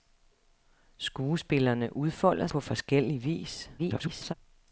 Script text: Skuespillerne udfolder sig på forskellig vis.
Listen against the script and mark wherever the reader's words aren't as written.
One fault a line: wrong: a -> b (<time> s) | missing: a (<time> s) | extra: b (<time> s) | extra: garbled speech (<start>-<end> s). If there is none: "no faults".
missing: sig (2.5 s)
extra: garbled speech (3.8-4.3 s)